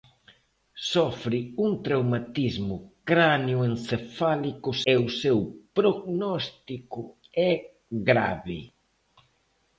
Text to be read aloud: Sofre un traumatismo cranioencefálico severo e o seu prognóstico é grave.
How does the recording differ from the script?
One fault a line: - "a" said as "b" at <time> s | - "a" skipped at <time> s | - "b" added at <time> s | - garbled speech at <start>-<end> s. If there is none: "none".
- "severo" skipped at 4.7 s